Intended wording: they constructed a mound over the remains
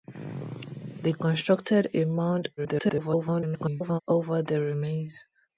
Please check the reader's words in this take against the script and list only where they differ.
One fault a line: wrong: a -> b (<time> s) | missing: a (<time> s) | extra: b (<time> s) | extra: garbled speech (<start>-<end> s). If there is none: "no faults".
extra: garbled speech (2.6-4.0 s)